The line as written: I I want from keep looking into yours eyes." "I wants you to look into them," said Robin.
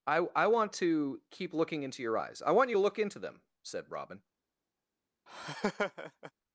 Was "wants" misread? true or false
true